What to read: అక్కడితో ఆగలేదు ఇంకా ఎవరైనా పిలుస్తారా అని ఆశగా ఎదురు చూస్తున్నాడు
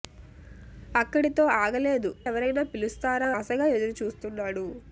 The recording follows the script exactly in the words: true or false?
false